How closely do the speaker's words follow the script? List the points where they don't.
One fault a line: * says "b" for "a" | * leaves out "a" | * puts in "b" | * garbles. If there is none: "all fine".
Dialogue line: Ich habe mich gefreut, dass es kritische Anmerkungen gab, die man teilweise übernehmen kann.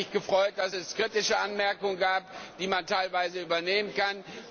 all fine